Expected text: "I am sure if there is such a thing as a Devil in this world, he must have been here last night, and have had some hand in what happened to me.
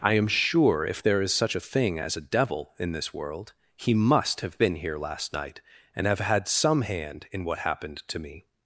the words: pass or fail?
pass